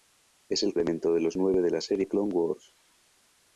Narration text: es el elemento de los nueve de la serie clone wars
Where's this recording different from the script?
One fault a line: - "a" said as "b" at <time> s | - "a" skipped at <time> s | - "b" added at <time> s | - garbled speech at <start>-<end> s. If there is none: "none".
none